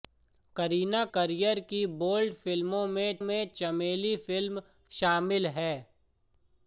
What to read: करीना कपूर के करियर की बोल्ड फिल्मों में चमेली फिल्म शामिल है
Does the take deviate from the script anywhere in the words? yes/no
yes